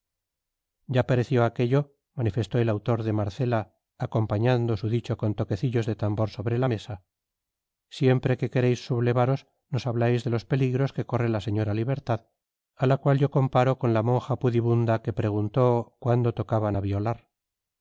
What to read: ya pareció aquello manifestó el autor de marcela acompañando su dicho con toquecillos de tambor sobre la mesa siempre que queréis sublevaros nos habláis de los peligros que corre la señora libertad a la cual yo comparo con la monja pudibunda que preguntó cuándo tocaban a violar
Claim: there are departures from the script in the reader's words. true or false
false